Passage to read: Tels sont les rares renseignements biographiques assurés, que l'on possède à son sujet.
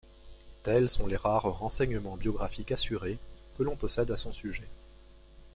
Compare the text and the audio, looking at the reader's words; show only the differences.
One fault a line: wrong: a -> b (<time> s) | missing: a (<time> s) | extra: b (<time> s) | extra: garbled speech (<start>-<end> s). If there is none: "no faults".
no faults